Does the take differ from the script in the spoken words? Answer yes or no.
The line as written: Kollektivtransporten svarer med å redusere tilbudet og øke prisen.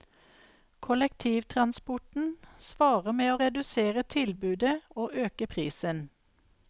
no